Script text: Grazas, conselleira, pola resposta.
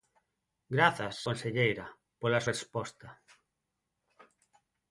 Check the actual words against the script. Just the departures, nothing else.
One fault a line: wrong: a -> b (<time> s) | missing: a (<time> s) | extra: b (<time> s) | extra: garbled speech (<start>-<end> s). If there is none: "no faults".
no faults